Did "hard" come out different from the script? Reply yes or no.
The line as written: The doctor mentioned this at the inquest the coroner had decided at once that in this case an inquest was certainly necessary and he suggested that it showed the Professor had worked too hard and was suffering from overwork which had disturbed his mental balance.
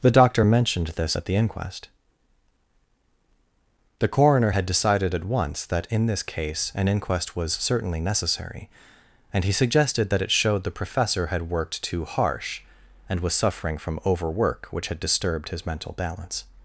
yes